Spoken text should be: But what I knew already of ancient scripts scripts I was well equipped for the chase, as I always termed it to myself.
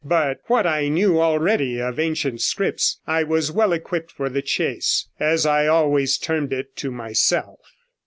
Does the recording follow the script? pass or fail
fail